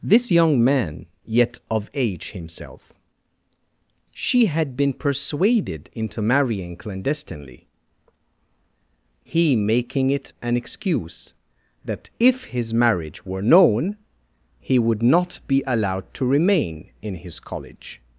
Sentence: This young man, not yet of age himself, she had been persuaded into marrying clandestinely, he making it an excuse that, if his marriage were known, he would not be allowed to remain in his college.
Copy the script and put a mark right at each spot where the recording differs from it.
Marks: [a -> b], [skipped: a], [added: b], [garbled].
This young man, [skipped: not] yet of age himself, she had been persuaded into marrying clandestinely, he making it an excuse that, if his marriage were known, he would not be allowed to remain in his college.